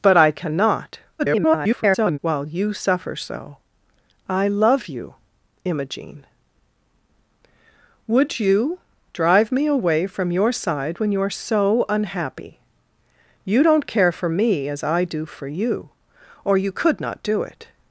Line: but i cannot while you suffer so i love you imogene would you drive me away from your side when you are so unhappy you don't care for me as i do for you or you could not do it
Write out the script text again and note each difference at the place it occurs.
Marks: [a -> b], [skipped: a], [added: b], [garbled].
but i cannot [garbled] while you suffer so i love you imogene would you drive me away from your side when you are so unhappy you don't care for me as i do for you or you could not do it